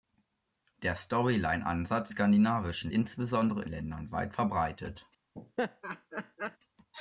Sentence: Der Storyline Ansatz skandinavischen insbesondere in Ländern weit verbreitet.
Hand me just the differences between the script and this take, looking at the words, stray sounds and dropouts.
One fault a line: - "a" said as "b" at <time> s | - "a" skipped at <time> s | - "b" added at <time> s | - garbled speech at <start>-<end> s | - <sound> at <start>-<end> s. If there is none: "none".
- laugh at 5.3-6.6 s